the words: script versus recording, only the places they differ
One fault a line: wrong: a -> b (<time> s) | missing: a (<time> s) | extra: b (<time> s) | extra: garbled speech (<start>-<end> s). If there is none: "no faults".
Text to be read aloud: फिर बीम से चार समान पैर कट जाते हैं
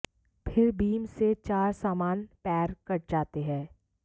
no faults